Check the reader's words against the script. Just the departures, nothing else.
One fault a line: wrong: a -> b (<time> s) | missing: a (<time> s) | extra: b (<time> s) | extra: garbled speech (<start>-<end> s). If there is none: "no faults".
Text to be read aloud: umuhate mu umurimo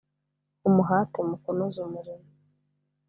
extra: kunoza (1.4 s)